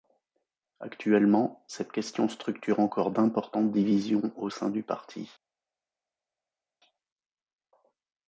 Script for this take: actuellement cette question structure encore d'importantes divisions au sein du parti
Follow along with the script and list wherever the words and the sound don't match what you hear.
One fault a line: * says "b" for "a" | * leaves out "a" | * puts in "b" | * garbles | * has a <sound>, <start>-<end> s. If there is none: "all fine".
all fine